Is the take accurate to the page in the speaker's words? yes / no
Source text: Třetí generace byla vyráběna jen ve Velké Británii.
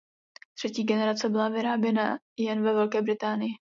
yes